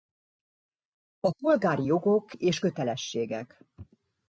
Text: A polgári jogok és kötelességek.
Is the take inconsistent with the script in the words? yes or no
no